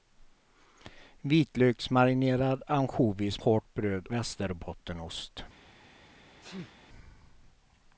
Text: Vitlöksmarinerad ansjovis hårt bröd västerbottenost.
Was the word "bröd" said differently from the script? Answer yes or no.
no